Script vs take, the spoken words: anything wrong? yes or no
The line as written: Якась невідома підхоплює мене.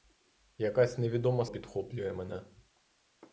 no